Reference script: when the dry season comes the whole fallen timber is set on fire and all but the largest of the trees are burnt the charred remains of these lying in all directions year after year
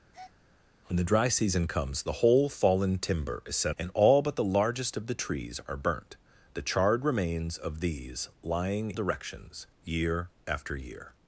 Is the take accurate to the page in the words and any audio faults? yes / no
no